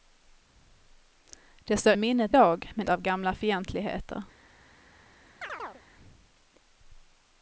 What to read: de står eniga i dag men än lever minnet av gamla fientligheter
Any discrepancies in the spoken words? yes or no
yes